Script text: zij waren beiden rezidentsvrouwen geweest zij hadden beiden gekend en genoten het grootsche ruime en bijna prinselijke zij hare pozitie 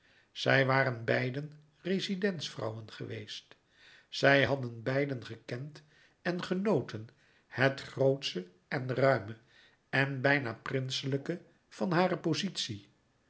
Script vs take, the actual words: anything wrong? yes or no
yes